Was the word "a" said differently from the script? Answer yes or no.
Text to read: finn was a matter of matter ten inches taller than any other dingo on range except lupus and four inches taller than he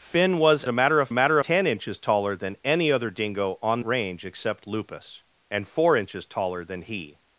no